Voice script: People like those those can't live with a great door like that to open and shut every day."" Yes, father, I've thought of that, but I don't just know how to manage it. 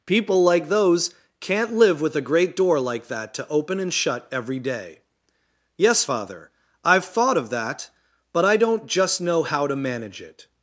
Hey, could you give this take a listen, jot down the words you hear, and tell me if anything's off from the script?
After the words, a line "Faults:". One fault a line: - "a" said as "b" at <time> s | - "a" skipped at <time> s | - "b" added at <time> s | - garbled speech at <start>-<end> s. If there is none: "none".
People like those can't live with a great door like that to open and shut every day."" Yes, father, I've thought of that, but I don't just know how to manage it.
Faults:
- "those" skipped at 1.1 s